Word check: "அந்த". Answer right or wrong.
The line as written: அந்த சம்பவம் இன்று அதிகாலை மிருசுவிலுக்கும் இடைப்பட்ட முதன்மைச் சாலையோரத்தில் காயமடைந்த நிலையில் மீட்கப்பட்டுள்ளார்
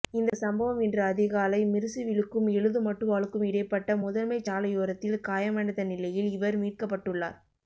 wrong